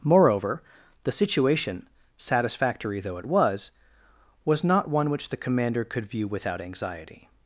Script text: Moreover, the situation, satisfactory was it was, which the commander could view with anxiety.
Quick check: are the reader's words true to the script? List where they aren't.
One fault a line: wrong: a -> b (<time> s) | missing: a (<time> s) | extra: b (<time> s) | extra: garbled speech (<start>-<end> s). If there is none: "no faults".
wrong: was -> though (3.0 s)
extra: was not one (4.5 s)
wrong: with -> without (6.3 s)